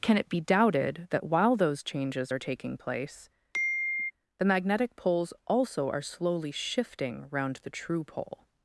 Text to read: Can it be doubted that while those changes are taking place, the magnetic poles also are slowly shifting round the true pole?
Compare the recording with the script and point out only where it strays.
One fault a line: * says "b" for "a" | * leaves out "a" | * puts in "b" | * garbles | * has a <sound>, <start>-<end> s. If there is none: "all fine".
* has a sigh, 3.5-4.1 s